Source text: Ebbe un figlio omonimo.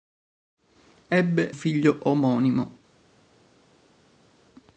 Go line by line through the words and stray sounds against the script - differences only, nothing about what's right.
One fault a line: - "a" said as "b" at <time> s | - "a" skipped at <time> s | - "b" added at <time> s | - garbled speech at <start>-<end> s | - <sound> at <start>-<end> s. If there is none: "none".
- "un" skipped at 1.5 s